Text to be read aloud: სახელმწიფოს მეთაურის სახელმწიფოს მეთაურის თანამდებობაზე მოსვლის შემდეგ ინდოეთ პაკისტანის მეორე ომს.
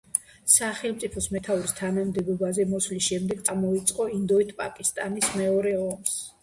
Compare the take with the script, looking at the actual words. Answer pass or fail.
fail